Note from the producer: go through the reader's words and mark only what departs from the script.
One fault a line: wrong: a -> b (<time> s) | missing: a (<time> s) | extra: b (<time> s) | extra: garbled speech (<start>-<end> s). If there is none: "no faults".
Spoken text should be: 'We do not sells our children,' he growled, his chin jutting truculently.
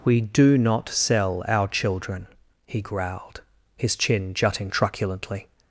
wrong: sells -> sell (0.9 s)